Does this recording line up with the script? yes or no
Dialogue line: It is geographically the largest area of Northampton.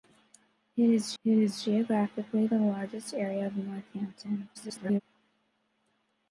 no